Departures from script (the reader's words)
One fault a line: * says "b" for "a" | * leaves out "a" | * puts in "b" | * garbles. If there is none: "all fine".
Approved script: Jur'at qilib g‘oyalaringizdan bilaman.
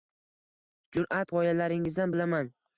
* leaves out "qilib"